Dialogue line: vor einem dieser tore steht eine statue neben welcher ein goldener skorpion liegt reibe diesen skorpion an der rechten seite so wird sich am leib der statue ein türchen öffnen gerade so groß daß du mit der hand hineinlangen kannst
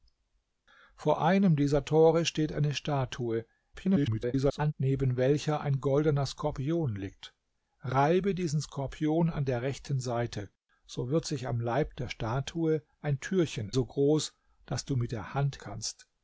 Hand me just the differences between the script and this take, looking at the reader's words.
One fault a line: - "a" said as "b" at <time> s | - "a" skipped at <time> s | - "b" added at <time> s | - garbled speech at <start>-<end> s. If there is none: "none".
- garbled speech at 3.7-4.7 s
- "öffnen gerade" skipped at 13.7 s
- "hineinlangen" skipped at 15.6 s